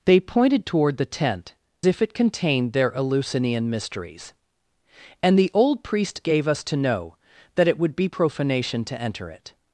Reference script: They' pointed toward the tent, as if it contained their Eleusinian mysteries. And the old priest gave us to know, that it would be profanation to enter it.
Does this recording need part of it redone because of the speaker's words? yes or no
yes